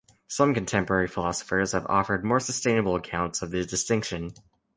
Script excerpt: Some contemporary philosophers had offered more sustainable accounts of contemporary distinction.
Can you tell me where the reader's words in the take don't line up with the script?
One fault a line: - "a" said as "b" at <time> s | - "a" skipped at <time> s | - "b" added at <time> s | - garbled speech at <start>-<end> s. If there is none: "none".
- "had" said as "have" at 1.7 s
- "contemporary" said as "the" at 3.5 s